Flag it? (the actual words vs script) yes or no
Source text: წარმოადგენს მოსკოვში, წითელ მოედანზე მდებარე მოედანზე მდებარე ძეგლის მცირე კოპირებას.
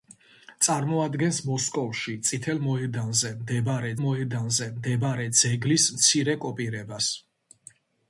no